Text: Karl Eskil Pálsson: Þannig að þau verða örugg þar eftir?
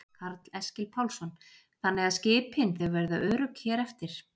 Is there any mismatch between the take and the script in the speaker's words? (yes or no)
yes